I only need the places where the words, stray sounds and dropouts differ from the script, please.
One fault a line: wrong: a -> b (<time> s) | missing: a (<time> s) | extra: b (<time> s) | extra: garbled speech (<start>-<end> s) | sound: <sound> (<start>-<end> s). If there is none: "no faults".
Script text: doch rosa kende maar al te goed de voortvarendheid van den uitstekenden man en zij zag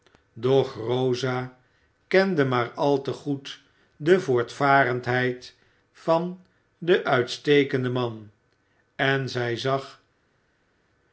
no faults